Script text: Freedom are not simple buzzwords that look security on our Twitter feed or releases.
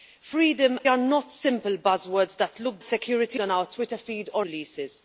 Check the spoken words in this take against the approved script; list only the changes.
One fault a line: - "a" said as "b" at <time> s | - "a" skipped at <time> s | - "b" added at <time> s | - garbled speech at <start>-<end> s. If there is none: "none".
none